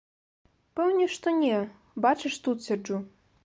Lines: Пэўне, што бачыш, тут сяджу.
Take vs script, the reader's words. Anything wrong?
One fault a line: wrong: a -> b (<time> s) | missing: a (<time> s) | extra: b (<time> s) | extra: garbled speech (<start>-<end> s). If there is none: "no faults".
extra: не (1.4 s)